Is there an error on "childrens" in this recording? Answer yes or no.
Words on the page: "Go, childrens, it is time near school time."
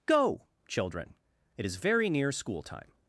yes